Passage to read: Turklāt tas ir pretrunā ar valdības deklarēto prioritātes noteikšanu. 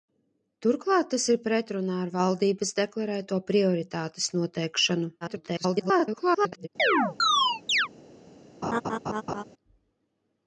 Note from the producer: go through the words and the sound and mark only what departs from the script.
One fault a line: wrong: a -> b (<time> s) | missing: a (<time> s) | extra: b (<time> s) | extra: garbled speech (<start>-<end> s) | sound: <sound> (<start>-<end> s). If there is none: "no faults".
extra: garbled speech (5.2-6.7 s)
sound: chirp (6.8-7.9 s)
sound: laugh (8.6-9.4 s)